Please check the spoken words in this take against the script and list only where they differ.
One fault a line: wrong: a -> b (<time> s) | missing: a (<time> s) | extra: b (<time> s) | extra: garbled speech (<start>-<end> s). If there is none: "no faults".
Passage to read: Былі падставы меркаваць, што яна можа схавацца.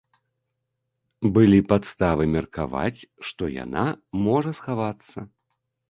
no faults